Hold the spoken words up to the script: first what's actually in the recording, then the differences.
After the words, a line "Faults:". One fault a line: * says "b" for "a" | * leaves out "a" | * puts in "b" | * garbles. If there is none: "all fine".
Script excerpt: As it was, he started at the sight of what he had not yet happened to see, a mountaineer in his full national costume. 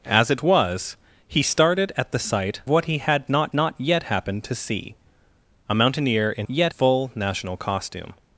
As it was, he started at the sight what he had not not yet happened to see, a mountaineer in yet full national costume.
Faults:
* leaves out "of"
* puts in "not"
* says "yet" for "his"